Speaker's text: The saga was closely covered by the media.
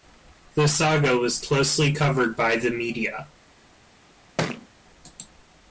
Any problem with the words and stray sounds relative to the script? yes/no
yes